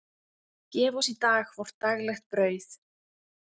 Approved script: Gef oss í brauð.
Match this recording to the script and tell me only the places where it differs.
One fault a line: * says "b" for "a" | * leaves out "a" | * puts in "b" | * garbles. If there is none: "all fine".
* puts in "dag vort daglegt"